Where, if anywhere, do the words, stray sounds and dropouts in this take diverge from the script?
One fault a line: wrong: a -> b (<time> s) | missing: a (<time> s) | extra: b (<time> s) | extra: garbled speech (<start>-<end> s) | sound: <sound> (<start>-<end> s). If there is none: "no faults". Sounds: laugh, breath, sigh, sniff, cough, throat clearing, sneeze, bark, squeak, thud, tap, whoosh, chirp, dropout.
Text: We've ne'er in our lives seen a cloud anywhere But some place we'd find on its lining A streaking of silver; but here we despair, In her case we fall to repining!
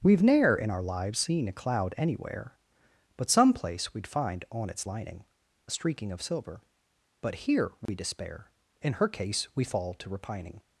sound: dropout (7.9-7.9 s)